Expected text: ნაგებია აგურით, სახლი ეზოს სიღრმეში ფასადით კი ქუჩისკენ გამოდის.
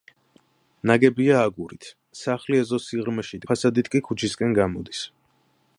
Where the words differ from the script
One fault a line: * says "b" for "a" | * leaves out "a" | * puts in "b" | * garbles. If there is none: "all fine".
all fine